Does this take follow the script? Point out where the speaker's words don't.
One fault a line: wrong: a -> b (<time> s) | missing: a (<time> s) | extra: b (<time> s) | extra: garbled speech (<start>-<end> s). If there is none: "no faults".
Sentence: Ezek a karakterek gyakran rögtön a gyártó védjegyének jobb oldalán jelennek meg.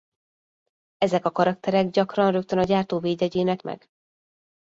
missing: jobb oldalán jelennek (3.6 s)